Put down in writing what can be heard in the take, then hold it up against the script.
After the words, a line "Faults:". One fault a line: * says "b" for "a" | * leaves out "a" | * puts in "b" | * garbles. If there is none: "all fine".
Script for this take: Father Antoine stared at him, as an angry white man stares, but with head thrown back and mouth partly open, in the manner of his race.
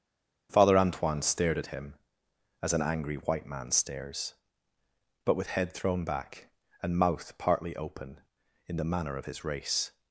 Father Antoine stared at him, as an angry white man stares, but with head thrown back and mouth partly open, in the manner of his race.
Faults:
all fine